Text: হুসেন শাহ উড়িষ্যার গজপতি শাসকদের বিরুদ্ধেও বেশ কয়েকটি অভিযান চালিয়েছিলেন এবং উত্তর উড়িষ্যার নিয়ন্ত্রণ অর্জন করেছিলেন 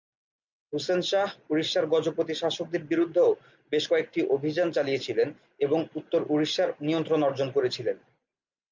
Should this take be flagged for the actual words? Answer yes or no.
no